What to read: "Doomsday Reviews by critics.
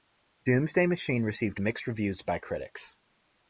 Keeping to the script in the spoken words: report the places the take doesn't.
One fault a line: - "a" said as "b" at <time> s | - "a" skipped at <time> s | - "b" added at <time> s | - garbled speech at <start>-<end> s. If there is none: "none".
- "Machine received mixed" added at 0.9 s